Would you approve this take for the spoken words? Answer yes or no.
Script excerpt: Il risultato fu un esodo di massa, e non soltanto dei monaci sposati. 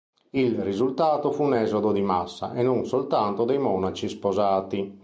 yes